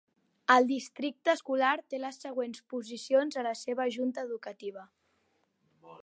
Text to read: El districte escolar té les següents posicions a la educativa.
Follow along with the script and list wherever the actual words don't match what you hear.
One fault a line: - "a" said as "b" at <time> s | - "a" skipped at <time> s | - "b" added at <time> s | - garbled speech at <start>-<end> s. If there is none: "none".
- "seva Junta" added at 3.6 s